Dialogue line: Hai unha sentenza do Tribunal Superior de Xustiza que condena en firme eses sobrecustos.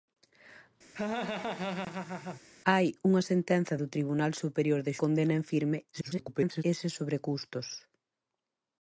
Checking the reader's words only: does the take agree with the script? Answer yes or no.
no